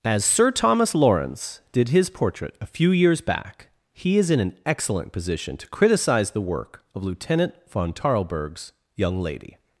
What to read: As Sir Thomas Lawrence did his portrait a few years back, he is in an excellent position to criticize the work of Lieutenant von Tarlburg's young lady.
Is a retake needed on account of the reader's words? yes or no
no